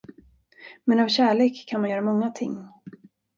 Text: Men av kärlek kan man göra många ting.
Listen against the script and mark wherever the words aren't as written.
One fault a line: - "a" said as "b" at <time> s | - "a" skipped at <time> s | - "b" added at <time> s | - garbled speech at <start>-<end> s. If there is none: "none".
none